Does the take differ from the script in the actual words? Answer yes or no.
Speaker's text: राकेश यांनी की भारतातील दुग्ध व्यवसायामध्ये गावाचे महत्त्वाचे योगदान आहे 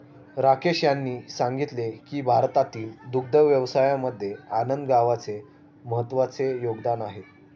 yes